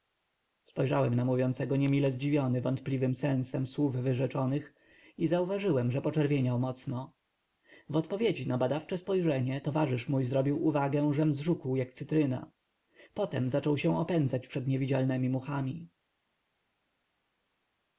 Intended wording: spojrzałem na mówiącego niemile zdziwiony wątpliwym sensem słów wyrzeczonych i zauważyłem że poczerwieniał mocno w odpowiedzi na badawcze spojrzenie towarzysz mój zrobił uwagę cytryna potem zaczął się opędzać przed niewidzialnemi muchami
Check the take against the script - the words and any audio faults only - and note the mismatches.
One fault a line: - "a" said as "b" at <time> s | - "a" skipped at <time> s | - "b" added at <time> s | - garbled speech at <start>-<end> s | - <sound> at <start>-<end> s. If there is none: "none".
- "żem zżółkł jak" added at 11.1 s